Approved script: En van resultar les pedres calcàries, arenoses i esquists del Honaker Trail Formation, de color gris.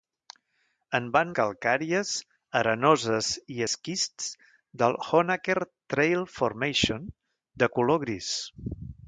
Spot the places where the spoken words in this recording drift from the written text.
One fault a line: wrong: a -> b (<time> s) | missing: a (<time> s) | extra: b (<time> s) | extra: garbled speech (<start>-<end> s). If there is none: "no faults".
missing: resultar les pedres (1.3 s)